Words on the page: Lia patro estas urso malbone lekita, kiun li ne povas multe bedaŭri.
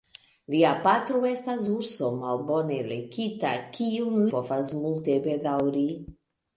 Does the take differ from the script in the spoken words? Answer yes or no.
yes